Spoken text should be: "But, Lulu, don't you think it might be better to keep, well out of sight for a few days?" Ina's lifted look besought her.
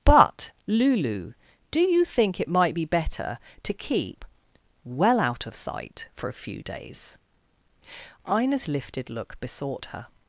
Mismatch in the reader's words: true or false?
true